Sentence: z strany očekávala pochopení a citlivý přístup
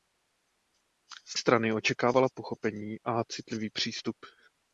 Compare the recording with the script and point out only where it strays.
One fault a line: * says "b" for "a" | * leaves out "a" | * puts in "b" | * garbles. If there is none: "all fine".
all fine